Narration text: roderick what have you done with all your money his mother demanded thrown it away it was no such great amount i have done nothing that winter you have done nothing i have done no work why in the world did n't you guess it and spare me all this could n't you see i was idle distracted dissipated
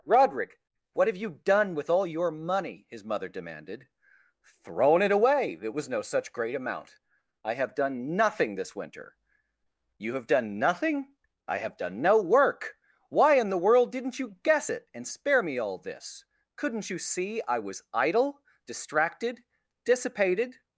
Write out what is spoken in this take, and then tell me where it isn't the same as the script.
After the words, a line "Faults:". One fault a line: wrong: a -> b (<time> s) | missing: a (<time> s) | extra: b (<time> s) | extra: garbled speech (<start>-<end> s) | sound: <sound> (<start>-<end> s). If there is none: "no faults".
roderick what have you done with all your money his mother demanded thrown it away it was no such great amount i have done nothing this winter you have done nothing i have done no work why in the world did n't you guess it and spare me all this could n't you see i was idle distracted dissipated
Faults:
wrong: that -> this (8.6 s)